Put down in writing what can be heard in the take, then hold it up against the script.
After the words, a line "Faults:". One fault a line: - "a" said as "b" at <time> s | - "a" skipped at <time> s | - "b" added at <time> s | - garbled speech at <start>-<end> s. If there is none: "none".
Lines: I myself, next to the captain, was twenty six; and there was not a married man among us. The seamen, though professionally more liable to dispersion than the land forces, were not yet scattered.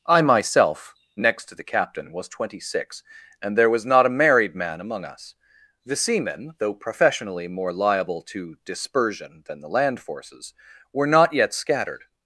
I myself, next to the captain, was twenty six; and there was not a married man among us. The seamen, though professionally more liable to dispersion than the land forces, were not yet scattered.
Faults:
none